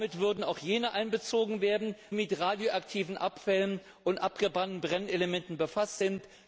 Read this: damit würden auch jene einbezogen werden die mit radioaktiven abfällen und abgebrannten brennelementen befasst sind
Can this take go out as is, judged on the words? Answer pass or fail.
fail